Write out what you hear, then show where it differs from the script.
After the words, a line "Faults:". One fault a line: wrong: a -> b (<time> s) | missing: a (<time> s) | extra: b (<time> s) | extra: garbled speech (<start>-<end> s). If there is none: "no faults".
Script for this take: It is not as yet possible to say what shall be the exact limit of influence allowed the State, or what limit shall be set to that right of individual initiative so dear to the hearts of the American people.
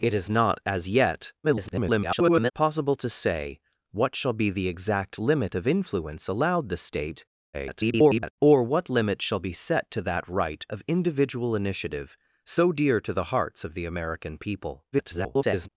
It is not as yet [garbled] possible to say what shall be the exact limit of influence allowed the State, [garbled] or what limit shall be set to that right of individual initiative so dear to the hearts of the American people. [garbled]
Faults:
extra: garbled speech (1.4-2.5 s)
extra: garbled speech (7.5-8.3 s)
extra: garbled speech (14.9-15.7 s)